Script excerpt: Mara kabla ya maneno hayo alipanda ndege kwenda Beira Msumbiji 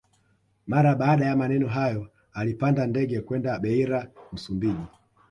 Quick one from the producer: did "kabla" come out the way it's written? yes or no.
no